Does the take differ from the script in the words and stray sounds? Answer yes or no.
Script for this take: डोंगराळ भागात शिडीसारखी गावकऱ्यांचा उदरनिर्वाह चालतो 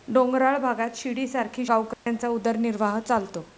yes